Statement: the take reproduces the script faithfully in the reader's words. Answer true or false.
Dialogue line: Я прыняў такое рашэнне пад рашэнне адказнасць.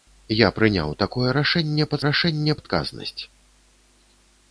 true